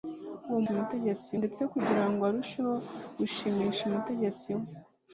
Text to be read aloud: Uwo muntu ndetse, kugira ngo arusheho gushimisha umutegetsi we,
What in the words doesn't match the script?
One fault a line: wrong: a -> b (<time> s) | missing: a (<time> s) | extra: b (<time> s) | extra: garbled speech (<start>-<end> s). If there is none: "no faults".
wrong: muntu -> umutegetsi (0.7 s)